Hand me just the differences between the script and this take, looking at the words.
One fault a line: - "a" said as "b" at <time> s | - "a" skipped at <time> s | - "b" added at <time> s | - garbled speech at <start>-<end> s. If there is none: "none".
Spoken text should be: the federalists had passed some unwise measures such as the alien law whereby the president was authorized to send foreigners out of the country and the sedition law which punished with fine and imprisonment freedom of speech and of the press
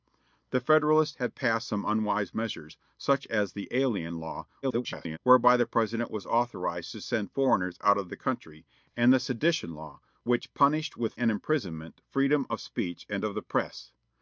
- garbled speech at 4.6-5.2 s
- "fine" skipped at 11.1 s